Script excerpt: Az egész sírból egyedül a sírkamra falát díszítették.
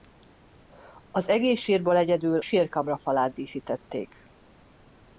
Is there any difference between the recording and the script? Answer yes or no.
yes